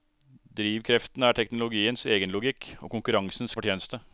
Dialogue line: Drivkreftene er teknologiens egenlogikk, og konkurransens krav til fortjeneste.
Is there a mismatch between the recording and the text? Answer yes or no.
yes